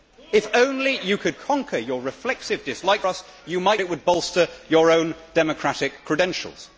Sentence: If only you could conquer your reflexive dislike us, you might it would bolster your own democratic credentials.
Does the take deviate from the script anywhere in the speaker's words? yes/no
no